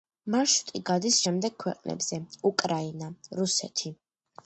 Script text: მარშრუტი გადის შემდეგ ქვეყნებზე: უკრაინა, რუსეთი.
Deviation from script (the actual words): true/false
false